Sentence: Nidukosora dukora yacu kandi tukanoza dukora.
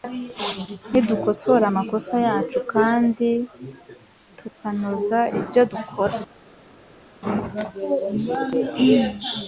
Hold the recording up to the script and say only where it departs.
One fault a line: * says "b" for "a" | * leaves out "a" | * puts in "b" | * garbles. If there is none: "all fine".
* says "amakosa" for "dukora"
* puts in "ibyo"